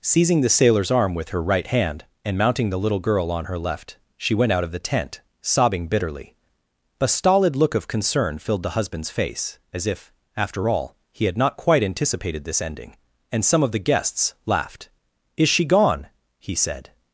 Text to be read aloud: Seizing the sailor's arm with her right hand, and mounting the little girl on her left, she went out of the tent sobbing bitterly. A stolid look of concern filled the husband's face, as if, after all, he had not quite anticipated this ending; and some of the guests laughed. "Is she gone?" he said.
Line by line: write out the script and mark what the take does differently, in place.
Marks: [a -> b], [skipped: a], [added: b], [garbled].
Seizing the sailor's arm with her right hand, and mounting the little girl on her left, she went out of the tent sobbing bitterly. A stolid look of concern filled the husband's face, as if, after all, he had not quite anticipated this ending; and some of the guests laughed. "Is she gone?" he said.